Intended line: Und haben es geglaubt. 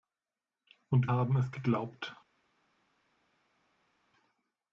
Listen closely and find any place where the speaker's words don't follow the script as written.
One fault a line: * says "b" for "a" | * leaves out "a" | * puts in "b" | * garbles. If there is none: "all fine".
all fine